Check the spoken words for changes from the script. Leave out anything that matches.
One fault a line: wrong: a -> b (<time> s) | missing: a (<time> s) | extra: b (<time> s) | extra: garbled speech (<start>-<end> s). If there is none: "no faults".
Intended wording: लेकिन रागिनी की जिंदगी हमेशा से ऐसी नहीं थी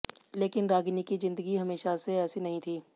no faults